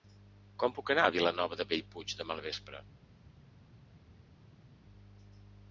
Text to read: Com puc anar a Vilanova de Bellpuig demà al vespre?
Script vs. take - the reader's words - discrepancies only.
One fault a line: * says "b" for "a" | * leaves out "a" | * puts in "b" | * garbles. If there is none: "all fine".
all fine